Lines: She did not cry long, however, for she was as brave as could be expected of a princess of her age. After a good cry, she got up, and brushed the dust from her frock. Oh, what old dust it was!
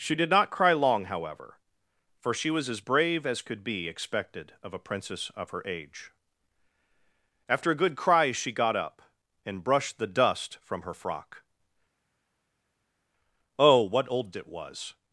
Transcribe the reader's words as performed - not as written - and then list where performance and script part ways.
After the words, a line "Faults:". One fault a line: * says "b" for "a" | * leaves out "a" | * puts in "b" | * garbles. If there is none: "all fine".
She did not cry long, however, for she was as brave as could be expected of a princess of her age. After a good cry, she got up, and brushed the dust from her frock. Oh, what old it was!
Faults:
* leaves out "dust"